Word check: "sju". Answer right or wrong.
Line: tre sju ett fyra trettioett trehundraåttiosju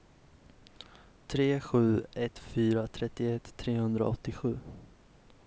right